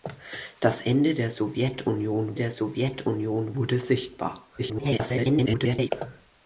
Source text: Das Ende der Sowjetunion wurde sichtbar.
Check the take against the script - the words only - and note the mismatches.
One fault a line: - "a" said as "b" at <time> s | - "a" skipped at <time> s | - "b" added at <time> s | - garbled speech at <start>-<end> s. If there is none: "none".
- "der Sowjetunion" added at 2.3 s
- garbled speech at 4.6-5.9 s